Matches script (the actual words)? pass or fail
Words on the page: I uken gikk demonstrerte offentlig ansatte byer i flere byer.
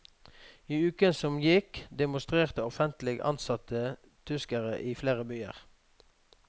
fail